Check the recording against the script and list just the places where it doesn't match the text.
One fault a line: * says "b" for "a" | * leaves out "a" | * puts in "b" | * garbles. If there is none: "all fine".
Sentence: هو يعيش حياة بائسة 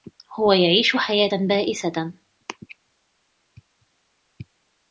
all fine